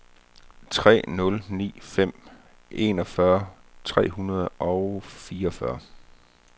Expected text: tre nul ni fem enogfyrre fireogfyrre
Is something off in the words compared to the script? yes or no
yes